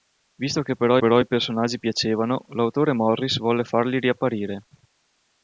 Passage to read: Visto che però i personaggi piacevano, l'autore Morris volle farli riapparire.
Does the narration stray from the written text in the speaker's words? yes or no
yes